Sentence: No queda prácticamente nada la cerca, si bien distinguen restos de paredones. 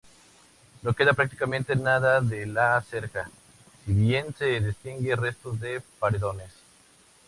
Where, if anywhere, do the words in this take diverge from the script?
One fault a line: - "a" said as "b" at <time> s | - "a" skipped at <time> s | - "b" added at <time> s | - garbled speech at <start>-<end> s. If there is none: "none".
- "de" added at 2.2 s
- "se" added at 4.4 s